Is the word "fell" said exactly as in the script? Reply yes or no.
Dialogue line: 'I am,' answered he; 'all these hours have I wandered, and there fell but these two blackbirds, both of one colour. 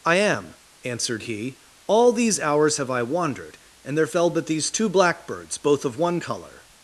yes